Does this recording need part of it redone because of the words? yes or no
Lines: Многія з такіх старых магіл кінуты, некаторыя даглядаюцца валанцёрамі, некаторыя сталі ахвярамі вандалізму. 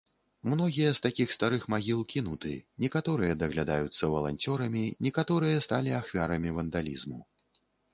no